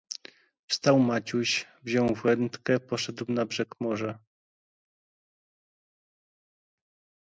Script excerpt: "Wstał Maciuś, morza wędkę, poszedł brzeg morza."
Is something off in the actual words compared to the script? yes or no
yes